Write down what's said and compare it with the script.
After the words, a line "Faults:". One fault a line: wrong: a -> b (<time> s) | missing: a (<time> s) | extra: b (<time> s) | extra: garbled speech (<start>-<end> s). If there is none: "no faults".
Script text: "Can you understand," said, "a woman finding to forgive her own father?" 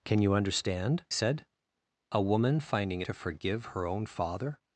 "Can you understand," said, "a woman finding to forgive her own father?"
Faults:
no faults